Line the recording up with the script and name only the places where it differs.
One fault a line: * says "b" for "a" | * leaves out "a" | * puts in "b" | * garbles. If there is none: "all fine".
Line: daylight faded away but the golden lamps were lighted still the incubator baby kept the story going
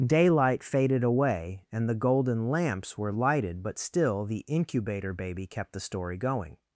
* says "and" for "but"
* puts in "but"